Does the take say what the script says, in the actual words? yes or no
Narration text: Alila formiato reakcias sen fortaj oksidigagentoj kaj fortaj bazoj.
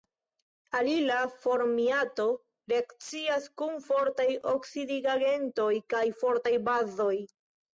no